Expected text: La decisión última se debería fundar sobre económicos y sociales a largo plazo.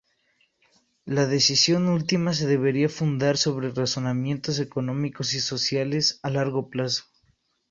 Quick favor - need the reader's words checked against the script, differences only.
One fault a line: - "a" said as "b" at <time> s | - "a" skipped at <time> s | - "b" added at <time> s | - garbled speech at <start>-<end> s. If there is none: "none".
- "razonamientos" added at 3.7 s